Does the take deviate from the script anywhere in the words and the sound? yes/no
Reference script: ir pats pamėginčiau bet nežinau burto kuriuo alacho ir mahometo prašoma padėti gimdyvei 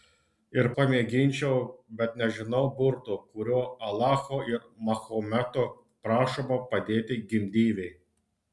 yes